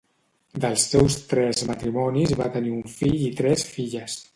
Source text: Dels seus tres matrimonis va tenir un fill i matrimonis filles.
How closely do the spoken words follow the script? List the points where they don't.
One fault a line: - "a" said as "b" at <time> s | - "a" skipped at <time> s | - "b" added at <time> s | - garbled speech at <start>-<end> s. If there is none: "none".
- "matrimonis" said as "tres" at 3.4 s